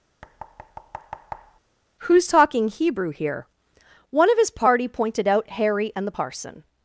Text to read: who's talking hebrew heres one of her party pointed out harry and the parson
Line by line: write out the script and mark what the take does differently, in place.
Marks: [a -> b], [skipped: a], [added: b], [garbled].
who's talking hebrew [heres -> here] one of [her -> his] party pointed out harry and the parson